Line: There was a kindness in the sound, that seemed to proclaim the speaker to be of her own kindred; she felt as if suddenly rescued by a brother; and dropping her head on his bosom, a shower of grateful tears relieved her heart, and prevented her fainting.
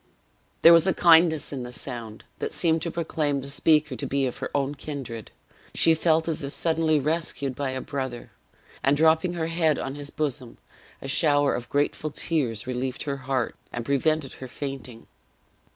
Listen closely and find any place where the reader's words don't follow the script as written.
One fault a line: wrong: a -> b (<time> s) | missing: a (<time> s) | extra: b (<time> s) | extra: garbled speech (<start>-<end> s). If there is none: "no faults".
no faults